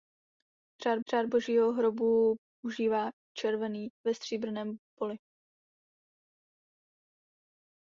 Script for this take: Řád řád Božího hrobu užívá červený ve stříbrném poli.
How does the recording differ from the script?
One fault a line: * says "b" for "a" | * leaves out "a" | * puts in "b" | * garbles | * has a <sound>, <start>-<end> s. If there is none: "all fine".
all fine